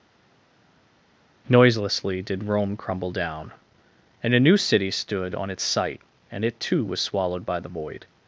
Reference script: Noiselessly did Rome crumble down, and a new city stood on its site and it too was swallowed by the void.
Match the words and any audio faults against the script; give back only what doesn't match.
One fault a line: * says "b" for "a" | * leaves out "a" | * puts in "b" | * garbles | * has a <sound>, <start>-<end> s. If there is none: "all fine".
all fine